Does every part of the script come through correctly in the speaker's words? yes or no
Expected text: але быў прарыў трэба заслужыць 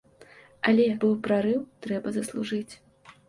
yes